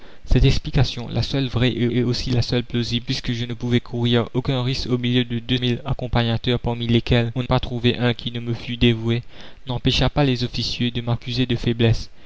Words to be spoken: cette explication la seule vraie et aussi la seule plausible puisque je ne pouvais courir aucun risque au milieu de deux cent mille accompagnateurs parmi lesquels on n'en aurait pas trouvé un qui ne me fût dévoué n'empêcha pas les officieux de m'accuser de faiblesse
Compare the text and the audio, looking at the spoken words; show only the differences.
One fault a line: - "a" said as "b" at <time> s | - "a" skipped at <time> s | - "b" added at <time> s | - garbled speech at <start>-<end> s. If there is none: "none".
- "et" added at 1.9 s
- "cent" skipped at 5.6 s
- "n'en aurait" skipped at 7.4 s